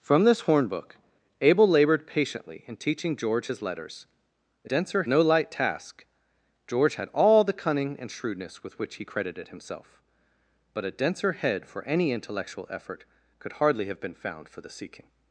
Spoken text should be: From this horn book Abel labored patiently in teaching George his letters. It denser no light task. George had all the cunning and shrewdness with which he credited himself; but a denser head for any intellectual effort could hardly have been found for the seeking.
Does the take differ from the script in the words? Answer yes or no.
no